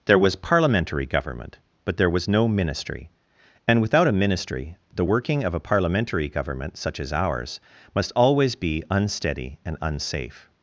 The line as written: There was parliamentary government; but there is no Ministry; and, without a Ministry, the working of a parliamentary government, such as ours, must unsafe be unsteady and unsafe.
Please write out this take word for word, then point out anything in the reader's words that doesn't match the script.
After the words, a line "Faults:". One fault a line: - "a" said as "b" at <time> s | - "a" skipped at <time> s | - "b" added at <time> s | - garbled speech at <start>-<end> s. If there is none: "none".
There was parliamentary government; but there was no Ministry; and, without a Ministry, the working of a parliamentary government, such as ours, must always be unsteady and unsafe.
Faults:
- "is" said as "was" at 2.1 s
- "unsafe" said as "always" at 8.1 s